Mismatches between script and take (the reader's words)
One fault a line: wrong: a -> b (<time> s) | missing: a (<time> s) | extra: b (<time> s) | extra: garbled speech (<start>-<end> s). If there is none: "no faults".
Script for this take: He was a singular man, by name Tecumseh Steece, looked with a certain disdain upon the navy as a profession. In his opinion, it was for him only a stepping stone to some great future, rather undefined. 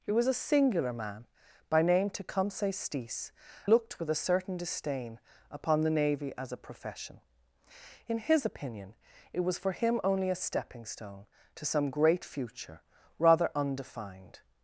no faults